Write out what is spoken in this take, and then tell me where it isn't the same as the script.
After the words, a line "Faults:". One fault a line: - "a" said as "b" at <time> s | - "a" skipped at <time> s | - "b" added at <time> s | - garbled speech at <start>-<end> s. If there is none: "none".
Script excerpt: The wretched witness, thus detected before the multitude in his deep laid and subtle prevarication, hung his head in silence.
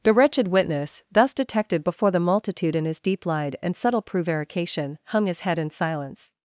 The wretched witness, thus detected before the multitude in his deep lied and subtle prevarication, hung his head in silence.
Faults:
- "laid" said as "lied" at 3.2 s